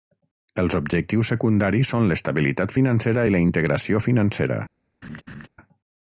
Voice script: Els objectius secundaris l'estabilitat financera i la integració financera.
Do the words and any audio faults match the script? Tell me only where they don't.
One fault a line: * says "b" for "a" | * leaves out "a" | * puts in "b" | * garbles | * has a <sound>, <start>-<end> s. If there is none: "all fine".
* puts in "són"
* has a laugh, 5.0-5.5 s